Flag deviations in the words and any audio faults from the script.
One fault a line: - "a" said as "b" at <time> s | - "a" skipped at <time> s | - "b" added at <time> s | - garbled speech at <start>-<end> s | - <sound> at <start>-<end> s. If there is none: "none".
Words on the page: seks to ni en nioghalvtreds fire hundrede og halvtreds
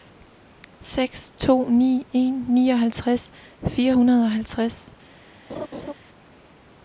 - laugh at 5.5-5.9 s